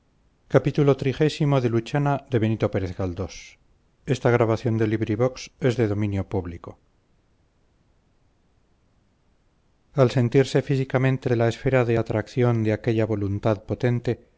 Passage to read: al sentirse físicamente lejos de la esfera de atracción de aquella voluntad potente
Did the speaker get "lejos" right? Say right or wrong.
wrong